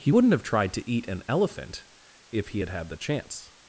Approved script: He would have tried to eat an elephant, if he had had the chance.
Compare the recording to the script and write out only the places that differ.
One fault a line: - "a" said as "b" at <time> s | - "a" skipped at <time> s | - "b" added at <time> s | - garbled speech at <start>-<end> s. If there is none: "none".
- "would" said as "wouldn't" at 0.1 s